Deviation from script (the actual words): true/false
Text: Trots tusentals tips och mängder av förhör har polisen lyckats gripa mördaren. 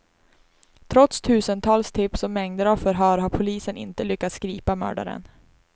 true